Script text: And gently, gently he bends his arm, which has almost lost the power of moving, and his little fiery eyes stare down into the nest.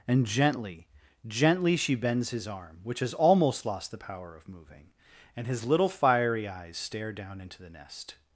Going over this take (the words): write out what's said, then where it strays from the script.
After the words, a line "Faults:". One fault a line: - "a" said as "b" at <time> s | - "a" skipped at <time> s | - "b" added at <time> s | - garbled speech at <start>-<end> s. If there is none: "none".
And gently, gently she bends his arm, which has almost lost the power of moving, and his little fiery eyes stare down into the nest.
Faults:
- "he" said as "she" at 1.8 s